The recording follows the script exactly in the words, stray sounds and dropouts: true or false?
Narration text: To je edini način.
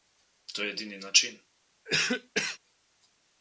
false